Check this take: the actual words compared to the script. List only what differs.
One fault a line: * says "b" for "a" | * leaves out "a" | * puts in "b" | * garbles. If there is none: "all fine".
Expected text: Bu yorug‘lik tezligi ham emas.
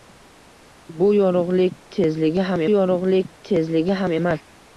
* puts in "yorug‘lik tezligi ham"